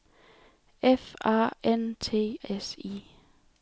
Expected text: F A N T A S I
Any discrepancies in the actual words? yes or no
yes